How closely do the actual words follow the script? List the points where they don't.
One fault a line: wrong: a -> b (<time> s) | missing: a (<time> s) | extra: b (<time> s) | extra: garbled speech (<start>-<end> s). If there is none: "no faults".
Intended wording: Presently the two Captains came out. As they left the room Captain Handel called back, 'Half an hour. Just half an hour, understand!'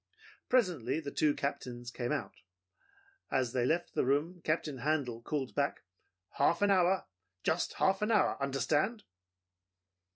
no faults